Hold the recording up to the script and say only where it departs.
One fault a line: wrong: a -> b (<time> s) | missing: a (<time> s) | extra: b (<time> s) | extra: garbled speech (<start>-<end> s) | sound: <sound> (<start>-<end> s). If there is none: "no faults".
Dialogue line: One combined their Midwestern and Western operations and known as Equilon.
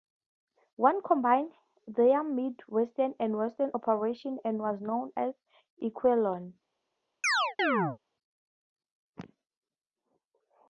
extra: was (4.6 s)
sound: chirp (7.2-8.0 s)